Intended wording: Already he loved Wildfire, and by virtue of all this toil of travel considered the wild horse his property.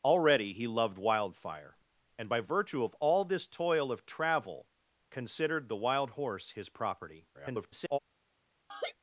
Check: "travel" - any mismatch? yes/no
no